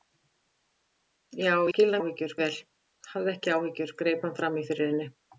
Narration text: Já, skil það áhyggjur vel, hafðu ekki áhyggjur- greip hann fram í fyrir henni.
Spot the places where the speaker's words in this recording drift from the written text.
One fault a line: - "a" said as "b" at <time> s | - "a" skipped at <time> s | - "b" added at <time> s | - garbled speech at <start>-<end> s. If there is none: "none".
none